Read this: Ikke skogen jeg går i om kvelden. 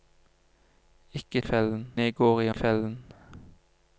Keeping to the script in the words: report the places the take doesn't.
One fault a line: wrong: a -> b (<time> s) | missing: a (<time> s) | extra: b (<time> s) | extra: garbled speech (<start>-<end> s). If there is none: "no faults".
wrong: skogen -> kvelden (1.4 s)
missing: om (2.5 s)